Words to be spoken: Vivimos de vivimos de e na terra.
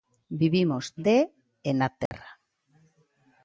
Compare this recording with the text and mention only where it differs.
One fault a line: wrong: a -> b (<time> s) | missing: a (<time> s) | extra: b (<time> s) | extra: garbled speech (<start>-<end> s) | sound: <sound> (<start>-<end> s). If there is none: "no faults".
missing: vivimos de (1.2 s)
sound: dropout (2.1-2.1 s)